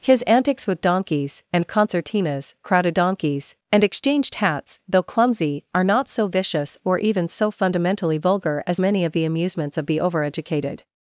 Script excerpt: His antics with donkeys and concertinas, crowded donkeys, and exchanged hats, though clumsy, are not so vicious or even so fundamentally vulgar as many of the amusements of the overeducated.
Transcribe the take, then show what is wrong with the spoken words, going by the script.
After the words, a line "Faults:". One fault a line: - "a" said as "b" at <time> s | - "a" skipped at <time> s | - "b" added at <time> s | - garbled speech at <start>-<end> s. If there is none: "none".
His antics with donkeys and concertinas, crowded donkeys, and exchanged hats, though clumsy, are not so vicious or even so fundamentally vulgar as many of the amusements of the overeducated.
Faults:
none